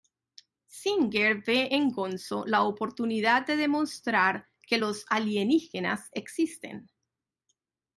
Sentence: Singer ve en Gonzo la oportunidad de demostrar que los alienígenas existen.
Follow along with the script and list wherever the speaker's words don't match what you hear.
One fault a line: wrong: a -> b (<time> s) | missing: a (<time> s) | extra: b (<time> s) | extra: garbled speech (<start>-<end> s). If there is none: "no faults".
no faults